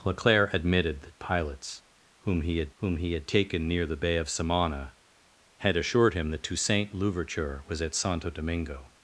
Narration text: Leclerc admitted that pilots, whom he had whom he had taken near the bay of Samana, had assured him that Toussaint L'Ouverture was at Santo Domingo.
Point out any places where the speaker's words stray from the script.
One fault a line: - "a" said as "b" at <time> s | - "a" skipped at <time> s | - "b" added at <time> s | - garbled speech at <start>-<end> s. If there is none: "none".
none